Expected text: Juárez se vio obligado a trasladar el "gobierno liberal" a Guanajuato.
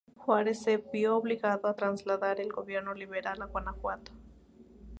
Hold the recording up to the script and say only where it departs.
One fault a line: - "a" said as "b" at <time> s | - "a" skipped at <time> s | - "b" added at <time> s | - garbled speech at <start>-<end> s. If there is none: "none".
none